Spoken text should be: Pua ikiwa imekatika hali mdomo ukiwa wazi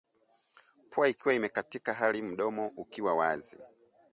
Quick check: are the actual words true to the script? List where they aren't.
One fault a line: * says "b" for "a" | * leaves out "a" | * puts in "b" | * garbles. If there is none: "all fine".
all fine